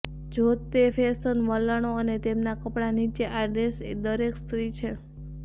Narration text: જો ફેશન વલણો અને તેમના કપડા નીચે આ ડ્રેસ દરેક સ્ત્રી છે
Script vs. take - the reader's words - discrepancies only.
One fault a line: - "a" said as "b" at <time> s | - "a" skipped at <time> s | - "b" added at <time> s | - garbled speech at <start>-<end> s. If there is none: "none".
- "તે" added at 0.7 s